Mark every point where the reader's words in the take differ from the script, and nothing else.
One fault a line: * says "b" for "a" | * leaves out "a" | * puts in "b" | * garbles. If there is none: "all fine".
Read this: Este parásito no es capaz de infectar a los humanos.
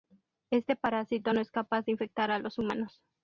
all fine